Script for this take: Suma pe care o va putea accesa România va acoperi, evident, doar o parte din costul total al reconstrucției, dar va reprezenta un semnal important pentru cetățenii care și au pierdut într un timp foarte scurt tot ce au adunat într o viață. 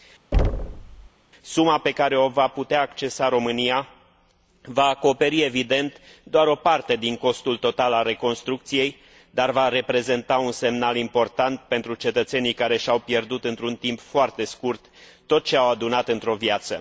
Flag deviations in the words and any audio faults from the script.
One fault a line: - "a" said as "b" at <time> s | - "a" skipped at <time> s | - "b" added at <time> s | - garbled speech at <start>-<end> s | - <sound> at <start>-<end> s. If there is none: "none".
- thud at 0.3-1.1 s